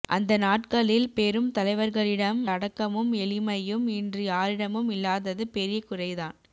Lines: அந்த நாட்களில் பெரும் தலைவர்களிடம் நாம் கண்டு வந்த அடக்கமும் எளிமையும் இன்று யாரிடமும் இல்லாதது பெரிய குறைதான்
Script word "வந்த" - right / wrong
wrong